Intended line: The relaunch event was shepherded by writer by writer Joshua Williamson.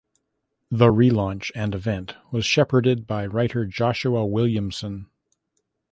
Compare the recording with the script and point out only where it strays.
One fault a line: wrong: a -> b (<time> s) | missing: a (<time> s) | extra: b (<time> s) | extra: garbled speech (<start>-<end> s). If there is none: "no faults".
extra: and (1.5 s)
missing: by writer (3.7 s)